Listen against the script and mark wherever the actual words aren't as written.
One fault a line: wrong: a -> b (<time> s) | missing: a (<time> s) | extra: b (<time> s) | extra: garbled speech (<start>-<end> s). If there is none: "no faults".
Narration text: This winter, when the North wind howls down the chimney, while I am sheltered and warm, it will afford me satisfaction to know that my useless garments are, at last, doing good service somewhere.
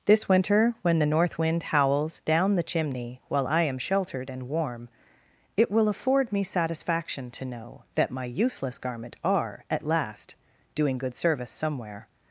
wrong: garments -> garment (8.8 s)